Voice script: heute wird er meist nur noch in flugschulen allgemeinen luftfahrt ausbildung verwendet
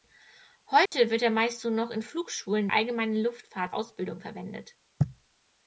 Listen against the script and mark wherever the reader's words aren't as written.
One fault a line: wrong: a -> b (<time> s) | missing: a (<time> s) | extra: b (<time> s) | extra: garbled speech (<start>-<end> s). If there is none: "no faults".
no faults